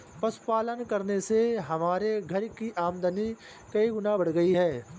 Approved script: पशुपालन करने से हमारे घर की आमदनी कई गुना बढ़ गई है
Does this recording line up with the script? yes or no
yes